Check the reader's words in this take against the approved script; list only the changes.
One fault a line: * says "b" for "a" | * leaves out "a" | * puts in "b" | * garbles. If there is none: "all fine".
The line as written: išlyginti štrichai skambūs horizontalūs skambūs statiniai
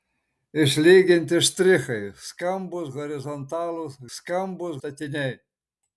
all fine